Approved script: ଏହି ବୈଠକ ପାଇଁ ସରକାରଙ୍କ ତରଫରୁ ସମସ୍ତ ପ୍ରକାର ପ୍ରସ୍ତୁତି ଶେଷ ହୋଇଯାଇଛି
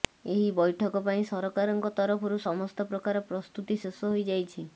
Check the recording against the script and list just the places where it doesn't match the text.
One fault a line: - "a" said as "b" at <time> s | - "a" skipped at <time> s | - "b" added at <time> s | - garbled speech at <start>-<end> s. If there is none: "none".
none